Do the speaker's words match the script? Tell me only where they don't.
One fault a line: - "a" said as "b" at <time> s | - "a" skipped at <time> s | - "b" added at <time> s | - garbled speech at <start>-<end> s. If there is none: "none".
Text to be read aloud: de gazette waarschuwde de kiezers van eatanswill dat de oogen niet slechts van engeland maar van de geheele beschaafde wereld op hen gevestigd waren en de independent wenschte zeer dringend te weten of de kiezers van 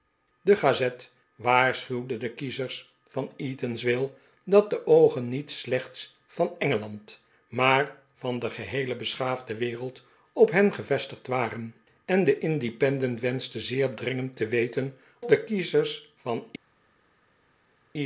- "of" skipped at 15.0 s